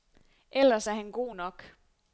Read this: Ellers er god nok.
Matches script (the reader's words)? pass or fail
fail